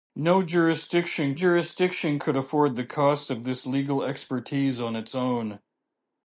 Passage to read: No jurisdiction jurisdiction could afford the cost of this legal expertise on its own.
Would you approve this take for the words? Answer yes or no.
yes